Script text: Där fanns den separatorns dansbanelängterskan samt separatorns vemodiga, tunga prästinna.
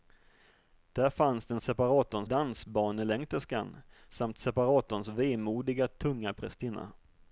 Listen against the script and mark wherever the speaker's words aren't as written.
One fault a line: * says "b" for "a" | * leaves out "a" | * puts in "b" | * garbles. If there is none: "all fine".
all fine